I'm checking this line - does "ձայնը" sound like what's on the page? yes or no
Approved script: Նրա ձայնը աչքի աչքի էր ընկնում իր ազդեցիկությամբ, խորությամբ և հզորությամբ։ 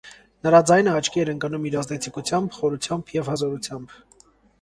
yes